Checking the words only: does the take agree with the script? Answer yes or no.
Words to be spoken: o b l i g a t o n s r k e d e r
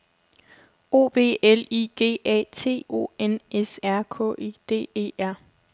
yes